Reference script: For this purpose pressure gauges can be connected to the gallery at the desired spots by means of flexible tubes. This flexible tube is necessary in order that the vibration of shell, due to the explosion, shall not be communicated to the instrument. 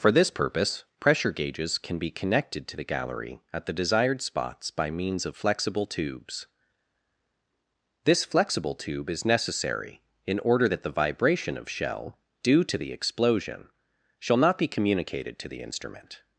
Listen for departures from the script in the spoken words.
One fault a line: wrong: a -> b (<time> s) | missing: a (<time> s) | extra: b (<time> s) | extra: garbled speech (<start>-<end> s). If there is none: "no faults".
no faults